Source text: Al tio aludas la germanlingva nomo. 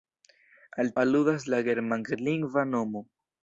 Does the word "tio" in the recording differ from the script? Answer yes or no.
yes